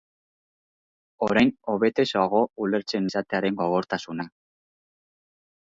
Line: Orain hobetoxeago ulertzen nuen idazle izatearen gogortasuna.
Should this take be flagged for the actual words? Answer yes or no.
yes